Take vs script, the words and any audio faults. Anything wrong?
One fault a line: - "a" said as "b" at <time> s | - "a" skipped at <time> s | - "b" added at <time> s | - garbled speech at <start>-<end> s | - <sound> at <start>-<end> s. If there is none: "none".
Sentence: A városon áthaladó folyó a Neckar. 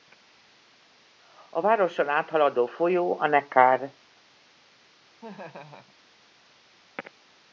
- laugh at 5.2-6.0 s